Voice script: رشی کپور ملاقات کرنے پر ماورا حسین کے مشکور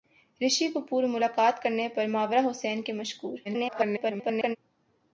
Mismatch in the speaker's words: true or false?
true